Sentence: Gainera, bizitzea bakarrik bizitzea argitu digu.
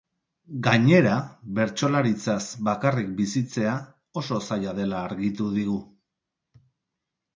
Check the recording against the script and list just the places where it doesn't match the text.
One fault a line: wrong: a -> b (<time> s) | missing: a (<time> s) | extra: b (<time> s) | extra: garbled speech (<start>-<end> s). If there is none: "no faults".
wrong: bizitzea -> bertsolaritzaz (1.6 s)
extra: oso zaila dela (4.2 s)